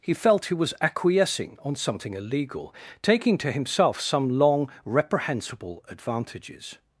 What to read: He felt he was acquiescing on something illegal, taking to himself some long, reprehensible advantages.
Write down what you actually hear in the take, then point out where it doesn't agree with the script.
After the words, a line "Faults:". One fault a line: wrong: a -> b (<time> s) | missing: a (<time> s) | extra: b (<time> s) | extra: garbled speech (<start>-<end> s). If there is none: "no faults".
He felt he was acquiescing on something illegal, taking to himself some long, reprehensible advantages.
Faults:
no faults